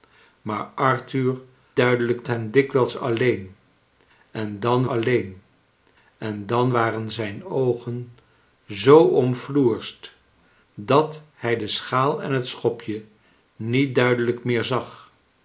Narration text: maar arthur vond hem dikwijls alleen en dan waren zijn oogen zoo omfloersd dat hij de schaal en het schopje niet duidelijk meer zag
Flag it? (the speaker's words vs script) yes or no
yes